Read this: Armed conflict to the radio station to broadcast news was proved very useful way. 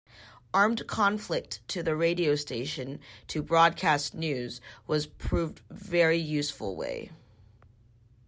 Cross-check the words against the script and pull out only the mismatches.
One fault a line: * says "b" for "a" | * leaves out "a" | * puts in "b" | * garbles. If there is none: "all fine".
all fine